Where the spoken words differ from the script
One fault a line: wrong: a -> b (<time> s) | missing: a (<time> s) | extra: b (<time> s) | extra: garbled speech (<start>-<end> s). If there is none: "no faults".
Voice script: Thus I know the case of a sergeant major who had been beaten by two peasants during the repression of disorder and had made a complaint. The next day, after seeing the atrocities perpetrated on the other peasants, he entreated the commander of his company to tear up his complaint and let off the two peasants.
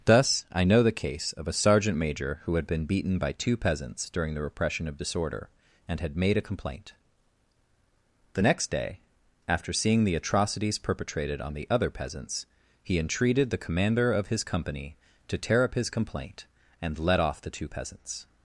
no faults